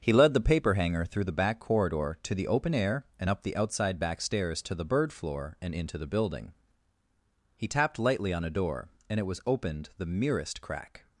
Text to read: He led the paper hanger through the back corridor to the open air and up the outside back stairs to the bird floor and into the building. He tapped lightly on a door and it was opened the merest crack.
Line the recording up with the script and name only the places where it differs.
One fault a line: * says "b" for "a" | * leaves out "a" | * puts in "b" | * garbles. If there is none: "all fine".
all fine